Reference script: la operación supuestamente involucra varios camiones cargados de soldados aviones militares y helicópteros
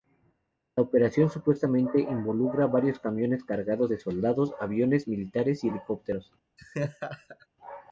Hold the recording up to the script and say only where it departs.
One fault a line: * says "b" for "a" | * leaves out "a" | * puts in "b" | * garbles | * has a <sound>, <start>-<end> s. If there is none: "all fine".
* has a laugh, 6.6-7.5 s